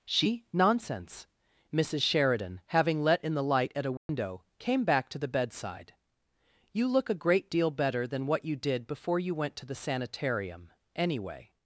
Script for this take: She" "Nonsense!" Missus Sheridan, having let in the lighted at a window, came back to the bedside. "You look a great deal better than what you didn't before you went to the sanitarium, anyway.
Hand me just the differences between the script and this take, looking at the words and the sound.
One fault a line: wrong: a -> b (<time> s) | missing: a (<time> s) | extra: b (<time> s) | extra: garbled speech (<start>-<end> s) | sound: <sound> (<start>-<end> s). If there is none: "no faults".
wrong: lighted -> light (3.4 s)
sound: dropout (4.0-4.1 s)
wrong: didn't -> did (8.6 s)